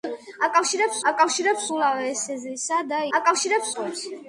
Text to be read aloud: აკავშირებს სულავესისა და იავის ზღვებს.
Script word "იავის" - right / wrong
wrong